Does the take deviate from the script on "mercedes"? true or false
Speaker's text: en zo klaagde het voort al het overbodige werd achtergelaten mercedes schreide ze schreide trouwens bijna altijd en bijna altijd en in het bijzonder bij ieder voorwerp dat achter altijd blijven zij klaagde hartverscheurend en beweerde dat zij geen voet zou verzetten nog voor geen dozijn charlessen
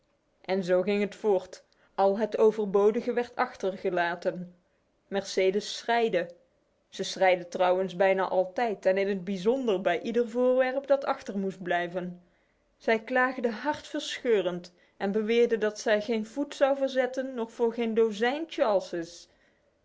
false